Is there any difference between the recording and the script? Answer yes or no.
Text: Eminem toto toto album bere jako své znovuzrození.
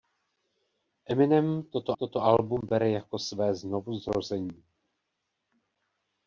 no